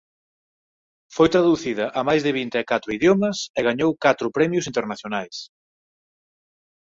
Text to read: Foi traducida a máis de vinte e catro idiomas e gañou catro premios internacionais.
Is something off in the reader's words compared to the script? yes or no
no